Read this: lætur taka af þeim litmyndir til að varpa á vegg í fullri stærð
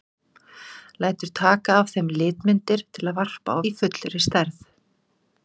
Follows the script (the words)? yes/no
no